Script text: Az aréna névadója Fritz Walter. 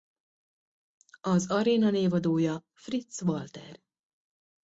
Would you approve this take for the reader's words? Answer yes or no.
yes